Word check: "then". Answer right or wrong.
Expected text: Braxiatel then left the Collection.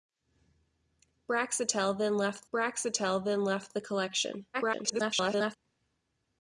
right